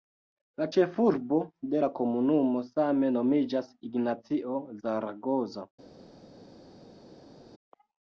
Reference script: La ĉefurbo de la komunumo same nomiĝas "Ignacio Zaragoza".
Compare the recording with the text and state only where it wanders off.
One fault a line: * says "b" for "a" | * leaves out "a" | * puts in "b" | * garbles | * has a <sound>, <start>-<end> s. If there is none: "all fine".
all fine